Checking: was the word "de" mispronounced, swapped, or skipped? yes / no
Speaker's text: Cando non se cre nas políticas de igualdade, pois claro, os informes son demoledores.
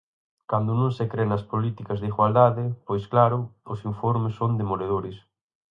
no